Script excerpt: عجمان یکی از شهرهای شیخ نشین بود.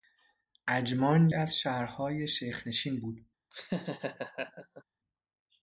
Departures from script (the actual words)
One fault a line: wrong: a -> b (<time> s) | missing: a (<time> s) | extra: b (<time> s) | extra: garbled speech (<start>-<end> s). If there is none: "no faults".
missing: یکی (1.3 s)